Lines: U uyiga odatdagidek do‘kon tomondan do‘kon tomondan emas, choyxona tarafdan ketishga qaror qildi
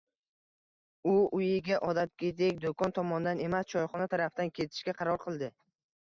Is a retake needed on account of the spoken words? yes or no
yes